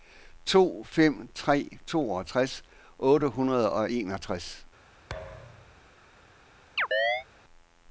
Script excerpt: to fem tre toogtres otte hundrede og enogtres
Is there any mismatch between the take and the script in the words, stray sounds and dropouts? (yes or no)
yes